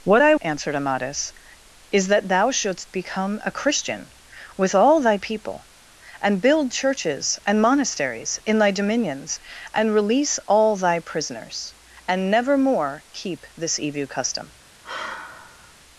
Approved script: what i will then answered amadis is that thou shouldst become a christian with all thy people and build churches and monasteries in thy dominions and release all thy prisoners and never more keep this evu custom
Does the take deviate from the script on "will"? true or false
true